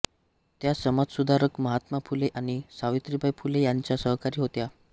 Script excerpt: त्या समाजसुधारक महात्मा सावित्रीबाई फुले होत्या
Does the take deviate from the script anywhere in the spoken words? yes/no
yes